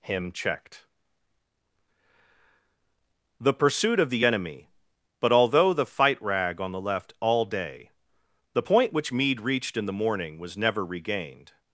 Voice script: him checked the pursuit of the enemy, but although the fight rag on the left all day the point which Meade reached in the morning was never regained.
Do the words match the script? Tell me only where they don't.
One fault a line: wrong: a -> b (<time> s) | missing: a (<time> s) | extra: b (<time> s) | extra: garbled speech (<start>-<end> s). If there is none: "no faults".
no faults